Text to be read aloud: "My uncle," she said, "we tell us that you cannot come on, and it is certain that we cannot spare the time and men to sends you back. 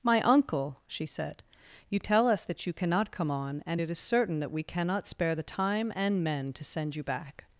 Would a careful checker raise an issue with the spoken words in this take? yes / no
yes